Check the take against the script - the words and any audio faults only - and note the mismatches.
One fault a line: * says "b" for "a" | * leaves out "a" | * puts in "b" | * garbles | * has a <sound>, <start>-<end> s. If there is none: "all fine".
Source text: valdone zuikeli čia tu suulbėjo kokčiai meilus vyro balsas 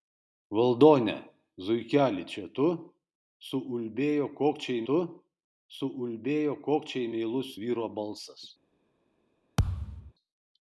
* puts in "tu suulbėjo kokčiai"
* has a thud, 9.6-10.1 s